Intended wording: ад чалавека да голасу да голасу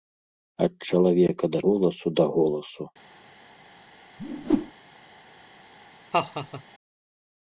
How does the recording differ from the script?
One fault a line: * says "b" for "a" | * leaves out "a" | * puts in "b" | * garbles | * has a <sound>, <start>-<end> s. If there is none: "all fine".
* has a whoosh, 4.2-4.7 s
* has a laugh, 6.1-6.6 s